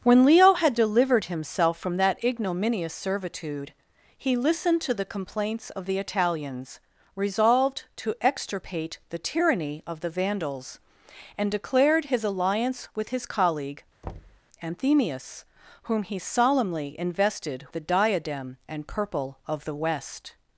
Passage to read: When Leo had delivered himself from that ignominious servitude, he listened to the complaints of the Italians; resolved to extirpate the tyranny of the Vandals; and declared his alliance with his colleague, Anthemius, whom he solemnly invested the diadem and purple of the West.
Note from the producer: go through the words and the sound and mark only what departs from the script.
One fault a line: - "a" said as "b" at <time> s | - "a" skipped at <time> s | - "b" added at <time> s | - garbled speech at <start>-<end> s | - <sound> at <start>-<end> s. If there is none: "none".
- thud at 14.0-14.4 s